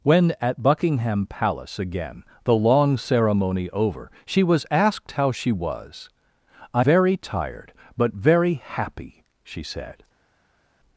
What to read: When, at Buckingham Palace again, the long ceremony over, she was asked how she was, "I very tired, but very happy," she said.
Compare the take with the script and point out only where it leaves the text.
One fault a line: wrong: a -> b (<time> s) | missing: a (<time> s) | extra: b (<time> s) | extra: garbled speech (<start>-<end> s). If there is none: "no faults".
no faults